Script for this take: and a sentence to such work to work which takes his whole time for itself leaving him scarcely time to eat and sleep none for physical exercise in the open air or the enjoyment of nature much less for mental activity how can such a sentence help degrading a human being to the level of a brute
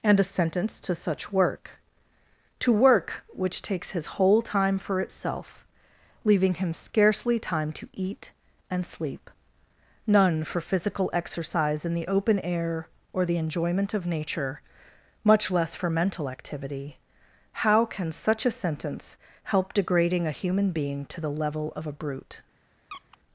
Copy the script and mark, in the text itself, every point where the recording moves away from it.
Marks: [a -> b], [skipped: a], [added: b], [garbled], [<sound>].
and a sentence to such work to work which takes his whole time for itself leaving him scarcely time to eat and sleep none for physical exercise in the open air or the enjoyment of nature much less for mental activity how can such a sentence help degrading a human being to the level of a brute [squeak]